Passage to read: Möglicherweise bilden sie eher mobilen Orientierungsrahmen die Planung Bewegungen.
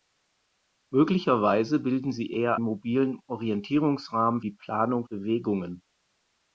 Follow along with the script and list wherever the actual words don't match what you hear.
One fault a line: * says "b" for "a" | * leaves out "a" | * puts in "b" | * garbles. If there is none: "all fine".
all fine